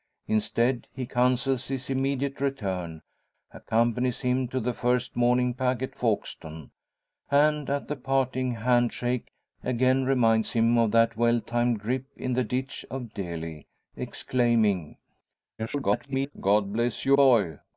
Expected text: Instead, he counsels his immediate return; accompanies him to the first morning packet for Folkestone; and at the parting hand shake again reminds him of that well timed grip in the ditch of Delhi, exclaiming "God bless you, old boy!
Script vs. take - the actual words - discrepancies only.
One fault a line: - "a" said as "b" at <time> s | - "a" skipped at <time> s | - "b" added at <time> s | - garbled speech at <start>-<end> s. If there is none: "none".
- "for" skipped at 5.9 s
- garbled speech at 15.6-16.3 s
- "old" skipped at 17.2 s